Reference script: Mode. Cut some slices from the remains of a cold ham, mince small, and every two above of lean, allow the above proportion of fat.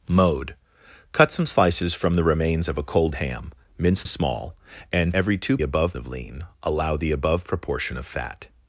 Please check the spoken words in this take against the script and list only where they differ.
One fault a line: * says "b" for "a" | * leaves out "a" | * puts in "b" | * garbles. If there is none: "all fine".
all fine